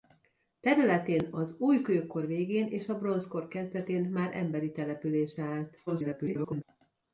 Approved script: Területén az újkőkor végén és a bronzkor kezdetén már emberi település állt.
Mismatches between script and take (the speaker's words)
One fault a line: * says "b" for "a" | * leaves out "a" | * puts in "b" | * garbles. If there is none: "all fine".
* garbles